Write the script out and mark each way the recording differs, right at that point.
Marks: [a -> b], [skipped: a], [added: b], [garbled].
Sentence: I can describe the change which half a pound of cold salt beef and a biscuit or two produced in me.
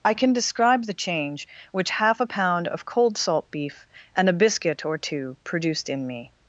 I can describe the change which half a pound of cold salt beef and a biscuit or two produced in me.